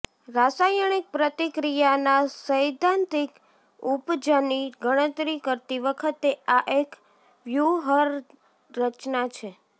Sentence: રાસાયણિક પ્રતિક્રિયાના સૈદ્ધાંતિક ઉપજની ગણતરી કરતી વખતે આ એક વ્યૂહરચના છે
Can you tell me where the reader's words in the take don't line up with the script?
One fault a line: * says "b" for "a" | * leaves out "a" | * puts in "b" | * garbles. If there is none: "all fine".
all fine